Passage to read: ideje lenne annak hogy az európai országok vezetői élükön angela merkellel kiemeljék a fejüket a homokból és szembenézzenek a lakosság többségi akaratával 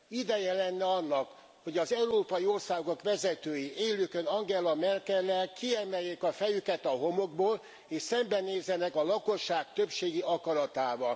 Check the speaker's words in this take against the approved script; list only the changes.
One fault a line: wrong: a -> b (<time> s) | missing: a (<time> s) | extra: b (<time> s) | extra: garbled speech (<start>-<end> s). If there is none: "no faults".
no faults